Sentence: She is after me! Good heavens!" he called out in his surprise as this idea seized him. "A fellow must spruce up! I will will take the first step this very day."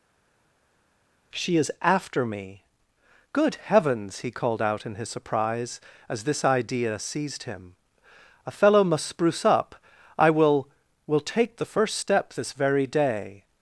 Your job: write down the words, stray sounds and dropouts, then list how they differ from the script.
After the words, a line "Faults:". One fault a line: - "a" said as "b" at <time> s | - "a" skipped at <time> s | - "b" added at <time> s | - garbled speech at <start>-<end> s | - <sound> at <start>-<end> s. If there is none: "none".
She is after me! Good heavens!" he called out in his surprise as this idea seized him. "A fellow must spruce up! I will will take the first step this very day."
Faults:
none